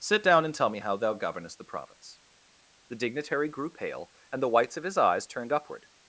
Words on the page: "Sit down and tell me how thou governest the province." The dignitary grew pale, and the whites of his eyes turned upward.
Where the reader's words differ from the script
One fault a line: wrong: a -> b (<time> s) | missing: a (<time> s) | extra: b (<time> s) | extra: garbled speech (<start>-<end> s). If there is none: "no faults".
no faults